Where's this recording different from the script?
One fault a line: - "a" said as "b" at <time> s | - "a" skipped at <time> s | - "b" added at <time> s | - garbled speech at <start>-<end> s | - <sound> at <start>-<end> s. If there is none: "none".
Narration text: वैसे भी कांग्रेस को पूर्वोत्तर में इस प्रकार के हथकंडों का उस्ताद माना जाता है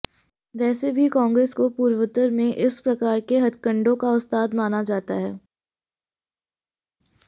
none